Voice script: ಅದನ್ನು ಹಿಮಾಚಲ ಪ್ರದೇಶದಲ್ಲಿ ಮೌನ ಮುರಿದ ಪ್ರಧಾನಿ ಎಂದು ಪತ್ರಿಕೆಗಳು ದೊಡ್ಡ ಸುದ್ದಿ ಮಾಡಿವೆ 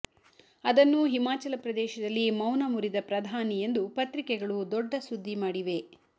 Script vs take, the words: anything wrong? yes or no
no